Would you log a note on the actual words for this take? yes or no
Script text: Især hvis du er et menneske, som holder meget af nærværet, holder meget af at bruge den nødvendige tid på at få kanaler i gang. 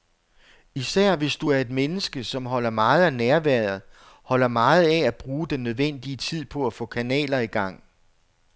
no